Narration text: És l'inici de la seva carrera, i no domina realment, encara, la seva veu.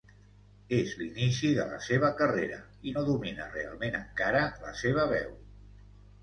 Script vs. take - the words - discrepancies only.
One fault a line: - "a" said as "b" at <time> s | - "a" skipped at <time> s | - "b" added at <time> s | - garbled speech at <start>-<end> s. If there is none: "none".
none